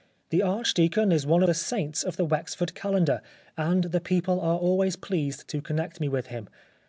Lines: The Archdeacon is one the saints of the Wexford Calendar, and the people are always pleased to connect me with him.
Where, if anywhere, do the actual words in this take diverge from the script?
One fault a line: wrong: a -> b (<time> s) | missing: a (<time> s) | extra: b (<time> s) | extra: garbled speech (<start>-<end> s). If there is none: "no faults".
no faults